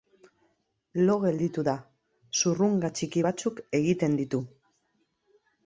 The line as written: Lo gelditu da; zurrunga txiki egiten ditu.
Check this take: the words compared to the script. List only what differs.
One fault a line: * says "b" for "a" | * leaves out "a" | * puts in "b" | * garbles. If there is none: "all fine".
* puts in "batzuk"